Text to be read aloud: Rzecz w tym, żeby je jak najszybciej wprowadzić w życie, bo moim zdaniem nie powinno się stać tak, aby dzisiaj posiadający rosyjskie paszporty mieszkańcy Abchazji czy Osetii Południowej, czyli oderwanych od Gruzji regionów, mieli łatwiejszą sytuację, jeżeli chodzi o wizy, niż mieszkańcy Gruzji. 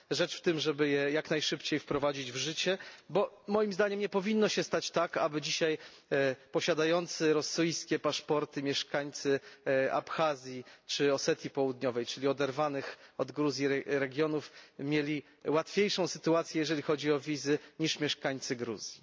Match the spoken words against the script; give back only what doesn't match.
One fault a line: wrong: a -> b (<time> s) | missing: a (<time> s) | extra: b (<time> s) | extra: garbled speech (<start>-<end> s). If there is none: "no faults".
no faults